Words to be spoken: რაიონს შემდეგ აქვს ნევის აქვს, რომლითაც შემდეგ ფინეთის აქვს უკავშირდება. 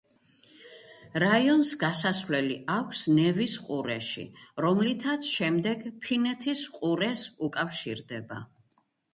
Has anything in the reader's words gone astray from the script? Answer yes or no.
yes